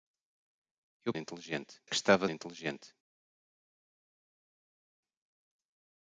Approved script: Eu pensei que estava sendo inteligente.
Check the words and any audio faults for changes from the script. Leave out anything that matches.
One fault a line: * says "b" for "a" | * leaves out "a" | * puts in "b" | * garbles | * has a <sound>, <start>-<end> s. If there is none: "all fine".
* says "inteligente" for "pensei"
* leaves out "sendo"